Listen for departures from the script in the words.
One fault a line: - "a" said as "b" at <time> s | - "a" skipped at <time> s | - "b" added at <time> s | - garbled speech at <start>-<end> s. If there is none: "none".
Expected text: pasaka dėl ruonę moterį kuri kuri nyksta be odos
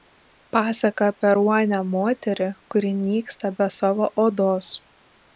- "dėl" said as "apie" at 1.1 s
- "kuri" skipped at 2.9 s
- "savo" added at 3.8 s